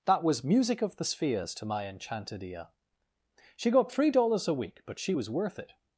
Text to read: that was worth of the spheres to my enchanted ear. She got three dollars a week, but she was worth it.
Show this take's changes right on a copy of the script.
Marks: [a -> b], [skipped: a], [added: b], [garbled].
that was [worth -> music] of the spheres to my enchanted ear. She got three dollars a week, but she was worth it.